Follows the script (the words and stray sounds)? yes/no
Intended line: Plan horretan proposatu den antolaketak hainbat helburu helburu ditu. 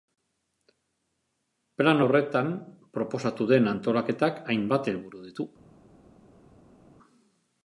no